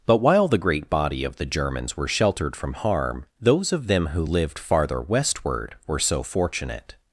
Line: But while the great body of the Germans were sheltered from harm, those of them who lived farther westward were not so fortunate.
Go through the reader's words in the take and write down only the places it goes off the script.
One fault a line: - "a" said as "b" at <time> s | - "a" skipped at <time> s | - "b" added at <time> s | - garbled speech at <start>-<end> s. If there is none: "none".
- "not" skipped at 6.0 s